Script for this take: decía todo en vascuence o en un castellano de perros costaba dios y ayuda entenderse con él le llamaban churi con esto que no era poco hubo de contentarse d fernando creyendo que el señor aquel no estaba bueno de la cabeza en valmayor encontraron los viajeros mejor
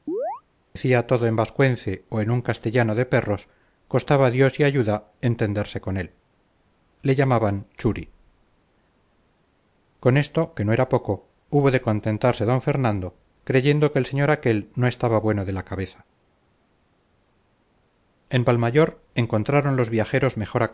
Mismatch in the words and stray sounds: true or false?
true